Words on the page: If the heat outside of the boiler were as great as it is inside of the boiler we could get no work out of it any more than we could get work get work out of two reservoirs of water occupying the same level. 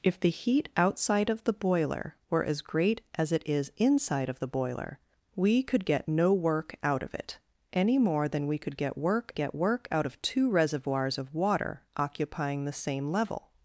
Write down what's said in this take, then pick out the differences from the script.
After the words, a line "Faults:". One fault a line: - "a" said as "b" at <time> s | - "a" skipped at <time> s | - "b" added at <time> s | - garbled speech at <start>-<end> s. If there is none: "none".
If the heat outside of the boiler were as great as it is inside of the boiler we could get no work out of it any more than we could get work get work out of two reservoirs of water occupying the same level.
Faults:
none